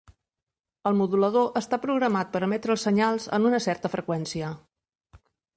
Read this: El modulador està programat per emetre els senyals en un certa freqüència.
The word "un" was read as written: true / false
false